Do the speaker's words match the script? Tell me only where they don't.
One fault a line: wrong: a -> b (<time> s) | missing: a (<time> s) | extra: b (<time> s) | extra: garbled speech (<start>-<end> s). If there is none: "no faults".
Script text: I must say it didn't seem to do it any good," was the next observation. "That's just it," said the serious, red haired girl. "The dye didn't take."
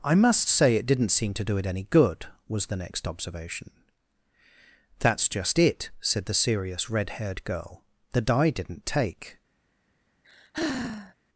no faults